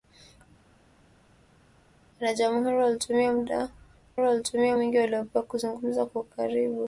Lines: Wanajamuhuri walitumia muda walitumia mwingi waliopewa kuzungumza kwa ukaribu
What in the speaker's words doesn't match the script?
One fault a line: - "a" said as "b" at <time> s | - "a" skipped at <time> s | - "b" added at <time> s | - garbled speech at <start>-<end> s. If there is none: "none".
none